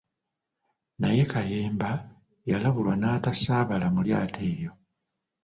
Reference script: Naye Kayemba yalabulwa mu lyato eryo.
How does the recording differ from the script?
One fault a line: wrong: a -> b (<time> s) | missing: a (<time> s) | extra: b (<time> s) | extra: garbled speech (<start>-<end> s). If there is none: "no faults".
extra: n'atasaabala (3.0 s)